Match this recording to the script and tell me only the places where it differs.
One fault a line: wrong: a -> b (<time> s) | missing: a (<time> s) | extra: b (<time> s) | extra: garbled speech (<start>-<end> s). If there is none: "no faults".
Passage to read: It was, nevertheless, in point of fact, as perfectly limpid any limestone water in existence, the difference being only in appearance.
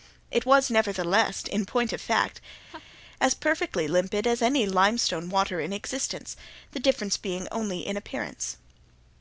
extra: as (4.3 s)